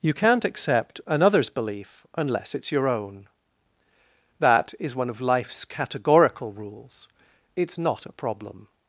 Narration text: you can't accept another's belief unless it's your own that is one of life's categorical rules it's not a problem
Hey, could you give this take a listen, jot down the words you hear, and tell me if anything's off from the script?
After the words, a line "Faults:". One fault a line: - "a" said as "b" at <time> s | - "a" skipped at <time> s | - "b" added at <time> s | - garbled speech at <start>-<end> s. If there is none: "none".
you can't accept another's belief unless it's your own that is one of life's categorical rules it's not a problem
Faults:
none